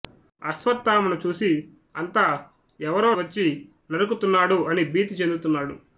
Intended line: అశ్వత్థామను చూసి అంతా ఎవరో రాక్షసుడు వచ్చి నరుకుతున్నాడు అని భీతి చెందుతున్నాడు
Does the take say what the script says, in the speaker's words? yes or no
no